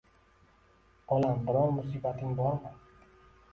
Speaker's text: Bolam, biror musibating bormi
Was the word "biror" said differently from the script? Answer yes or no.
no